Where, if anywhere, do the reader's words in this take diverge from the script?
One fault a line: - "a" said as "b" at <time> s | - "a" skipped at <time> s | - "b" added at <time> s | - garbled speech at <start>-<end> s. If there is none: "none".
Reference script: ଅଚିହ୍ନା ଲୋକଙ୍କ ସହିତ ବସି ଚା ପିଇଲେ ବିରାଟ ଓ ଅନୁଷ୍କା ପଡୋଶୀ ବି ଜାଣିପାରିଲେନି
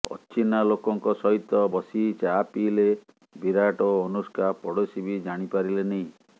none